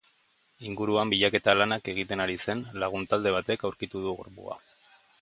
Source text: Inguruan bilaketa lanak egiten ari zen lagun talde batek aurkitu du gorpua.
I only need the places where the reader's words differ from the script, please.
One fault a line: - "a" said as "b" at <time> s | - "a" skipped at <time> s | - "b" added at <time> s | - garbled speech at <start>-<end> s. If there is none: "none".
none